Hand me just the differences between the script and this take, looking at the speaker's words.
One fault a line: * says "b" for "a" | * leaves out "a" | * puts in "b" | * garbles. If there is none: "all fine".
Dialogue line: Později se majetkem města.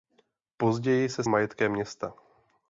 all fine